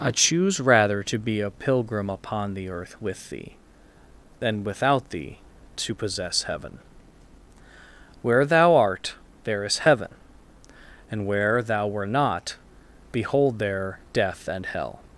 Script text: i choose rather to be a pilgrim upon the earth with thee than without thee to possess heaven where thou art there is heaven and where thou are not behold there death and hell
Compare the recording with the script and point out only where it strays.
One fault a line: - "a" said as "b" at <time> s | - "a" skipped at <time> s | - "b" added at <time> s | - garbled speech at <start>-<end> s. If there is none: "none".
- "are" said as "were" at 11.8 s